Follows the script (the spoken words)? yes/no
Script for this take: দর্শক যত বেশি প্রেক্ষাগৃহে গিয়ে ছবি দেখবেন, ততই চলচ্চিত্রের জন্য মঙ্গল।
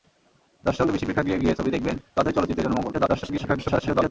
no